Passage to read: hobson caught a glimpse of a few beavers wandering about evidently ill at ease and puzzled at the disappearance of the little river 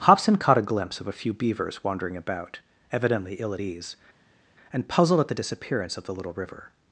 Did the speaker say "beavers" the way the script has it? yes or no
yes